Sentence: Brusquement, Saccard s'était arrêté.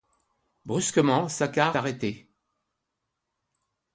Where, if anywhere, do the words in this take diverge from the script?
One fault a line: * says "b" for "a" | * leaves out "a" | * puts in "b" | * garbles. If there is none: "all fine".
* leaves out "s'était"